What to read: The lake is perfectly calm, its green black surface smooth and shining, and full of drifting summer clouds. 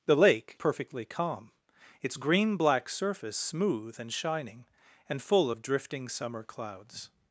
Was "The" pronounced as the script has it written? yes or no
yes